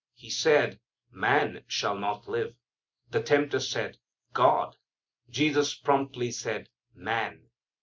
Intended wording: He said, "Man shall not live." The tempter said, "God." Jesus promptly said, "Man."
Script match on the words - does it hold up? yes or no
yes